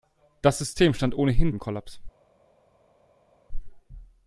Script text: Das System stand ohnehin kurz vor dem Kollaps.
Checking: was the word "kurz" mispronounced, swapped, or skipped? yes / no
yes